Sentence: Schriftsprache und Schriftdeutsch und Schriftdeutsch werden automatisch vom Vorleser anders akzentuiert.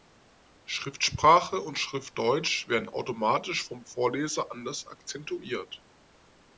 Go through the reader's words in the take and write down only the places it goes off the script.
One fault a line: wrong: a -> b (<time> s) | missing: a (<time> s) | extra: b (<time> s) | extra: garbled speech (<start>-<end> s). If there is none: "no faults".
missing: und Schriftdeutsch (2.7 s)